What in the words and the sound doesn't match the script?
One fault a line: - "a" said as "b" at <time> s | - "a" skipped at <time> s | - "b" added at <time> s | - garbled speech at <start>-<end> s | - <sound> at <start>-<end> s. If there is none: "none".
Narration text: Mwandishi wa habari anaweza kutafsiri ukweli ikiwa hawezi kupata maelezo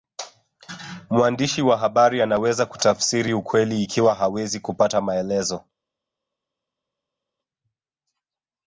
none